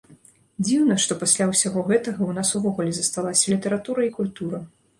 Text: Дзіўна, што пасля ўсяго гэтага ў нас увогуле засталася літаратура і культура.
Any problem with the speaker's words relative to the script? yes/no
no